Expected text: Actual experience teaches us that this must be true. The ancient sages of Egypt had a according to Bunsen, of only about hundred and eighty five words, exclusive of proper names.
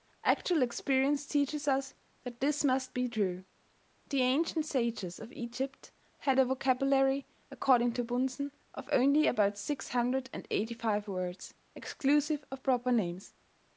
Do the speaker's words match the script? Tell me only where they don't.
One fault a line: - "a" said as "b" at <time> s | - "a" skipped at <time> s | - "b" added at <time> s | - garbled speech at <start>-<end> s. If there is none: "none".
- "vocabulary" added at 6.5 s
- "six" added at 9.6 s